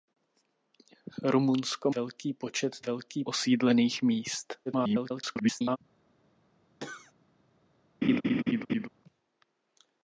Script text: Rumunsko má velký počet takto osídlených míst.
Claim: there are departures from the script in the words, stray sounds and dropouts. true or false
true